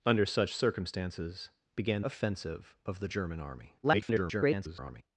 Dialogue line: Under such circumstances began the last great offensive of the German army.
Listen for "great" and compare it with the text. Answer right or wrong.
wrong